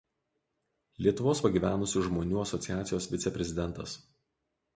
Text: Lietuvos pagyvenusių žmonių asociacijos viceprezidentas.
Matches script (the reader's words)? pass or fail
pass